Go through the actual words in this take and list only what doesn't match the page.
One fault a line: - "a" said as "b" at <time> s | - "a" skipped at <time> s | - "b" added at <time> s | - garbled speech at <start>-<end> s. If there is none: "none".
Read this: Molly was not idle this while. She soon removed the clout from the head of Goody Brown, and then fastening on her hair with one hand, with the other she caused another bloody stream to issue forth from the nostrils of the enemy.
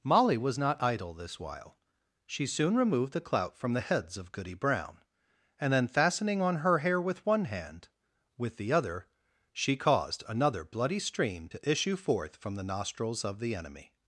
- "head" said as "heads" at 3.8 s